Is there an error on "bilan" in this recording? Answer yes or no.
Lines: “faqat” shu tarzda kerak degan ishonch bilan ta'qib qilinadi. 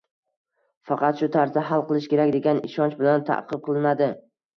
no